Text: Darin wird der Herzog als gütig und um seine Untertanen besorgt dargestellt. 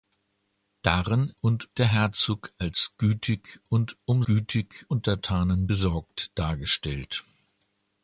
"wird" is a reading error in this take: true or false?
true